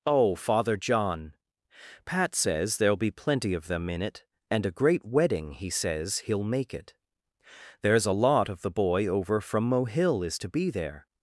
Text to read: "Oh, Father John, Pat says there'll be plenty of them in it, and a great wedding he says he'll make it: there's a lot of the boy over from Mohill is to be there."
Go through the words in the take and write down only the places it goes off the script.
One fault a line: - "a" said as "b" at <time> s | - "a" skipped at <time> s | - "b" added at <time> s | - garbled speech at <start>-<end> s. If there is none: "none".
none